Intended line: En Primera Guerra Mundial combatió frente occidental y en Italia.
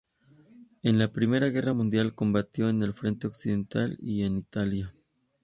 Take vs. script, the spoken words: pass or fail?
fail